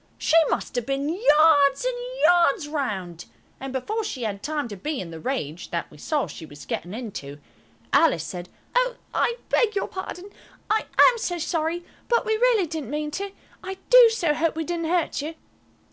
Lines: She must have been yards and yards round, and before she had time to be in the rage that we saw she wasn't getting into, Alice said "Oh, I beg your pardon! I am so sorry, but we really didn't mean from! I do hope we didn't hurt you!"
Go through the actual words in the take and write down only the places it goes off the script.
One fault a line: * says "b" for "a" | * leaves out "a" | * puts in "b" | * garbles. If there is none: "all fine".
* says "was" for "wasn't"
* says "to" for "from"
* puts in "so"